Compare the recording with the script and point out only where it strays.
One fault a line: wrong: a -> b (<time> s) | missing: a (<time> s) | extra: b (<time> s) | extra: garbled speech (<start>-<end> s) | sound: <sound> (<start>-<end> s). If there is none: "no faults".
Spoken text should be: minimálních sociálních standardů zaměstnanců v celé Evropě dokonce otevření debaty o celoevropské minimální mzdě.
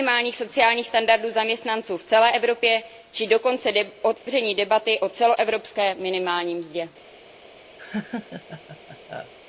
extra: či (3.1 s)
sound: dropout (4.2-4.3 s)
sound: laugh (7.8-9.3 s)